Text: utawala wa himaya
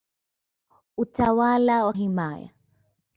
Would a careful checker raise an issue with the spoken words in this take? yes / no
no